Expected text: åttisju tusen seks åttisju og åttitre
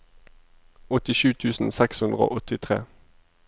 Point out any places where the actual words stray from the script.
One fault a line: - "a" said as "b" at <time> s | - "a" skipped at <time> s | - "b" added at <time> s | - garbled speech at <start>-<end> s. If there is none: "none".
- "åttisju" said as "hundre" at 2.1 s